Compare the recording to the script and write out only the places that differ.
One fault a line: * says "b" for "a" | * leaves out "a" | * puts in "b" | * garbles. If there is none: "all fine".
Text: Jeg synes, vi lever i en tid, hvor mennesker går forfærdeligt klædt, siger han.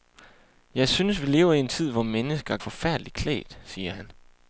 * leaves out "går"